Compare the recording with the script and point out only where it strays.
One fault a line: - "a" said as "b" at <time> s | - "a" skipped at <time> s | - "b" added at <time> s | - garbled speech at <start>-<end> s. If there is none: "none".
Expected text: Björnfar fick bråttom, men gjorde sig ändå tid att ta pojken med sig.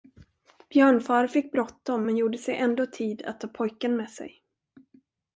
none